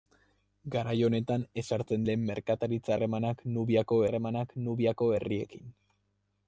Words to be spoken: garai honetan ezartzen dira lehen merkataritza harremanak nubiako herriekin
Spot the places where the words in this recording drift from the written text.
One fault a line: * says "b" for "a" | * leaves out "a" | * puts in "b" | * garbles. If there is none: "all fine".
* leaves out "dira"
* puts in "harremanak nubiako"